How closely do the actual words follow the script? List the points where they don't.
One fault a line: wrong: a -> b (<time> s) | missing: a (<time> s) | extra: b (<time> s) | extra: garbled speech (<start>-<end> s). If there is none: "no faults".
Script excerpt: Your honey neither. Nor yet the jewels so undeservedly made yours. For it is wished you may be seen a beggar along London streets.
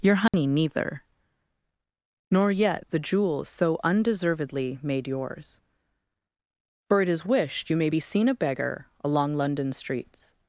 no faults